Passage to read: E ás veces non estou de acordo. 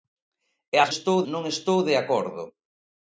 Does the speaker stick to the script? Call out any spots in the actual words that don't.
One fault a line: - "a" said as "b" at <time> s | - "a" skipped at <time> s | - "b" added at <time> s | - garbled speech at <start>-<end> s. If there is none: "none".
- "veces" said as "estou" at 0.9 s